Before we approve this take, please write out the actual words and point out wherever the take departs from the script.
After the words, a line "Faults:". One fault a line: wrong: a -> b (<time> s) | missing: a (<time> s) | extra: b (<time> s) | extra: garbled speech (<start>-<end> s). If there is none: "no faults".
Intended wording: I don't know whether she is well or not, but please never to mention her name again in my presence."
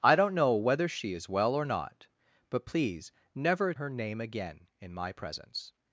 I don't know whether she is well or not, but please never her name again in my presence."
Faults:
missing: to mention (3.7 s)